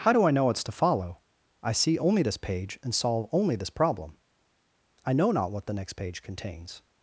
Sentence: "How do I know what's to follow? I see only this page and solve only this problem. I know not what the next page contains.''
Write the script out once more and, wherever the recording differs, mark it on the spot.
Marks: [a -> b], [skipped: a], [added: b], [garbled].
"How do I know what's to follow? I see only this page and solve only this problem. I know not what the next page contains.''